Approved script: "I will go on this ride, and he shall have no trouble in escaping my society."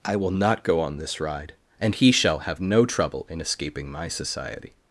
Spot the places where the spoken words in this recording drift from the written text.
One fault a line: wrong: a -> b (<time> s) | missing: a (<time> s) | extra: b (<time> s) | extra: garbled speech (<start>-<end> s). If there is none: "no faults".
extra: not (0.3 s)